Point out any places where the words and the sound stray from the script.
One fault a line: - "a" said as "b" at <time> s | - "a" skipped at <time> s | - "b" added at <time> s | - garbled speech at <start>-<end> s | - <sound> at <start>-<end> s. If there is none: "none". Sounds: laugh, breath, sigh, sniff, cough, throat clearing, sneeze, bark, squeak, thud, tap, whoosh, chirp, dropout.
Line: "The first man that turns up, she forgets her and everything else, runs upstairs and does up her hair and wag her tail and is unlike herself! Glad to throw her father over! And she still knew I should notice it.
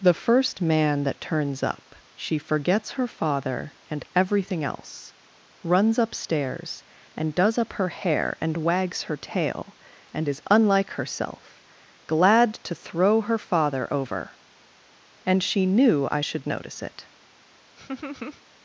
- "father" added at 3.0 s
- "wag" said as "wags" at 8.6 s
- "still" skipped at 15.7 s
- laugh at 17.8-18.4 s